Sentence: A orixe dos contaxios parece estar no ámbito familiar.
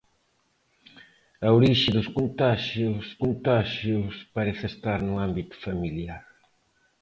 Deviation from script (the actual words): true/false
true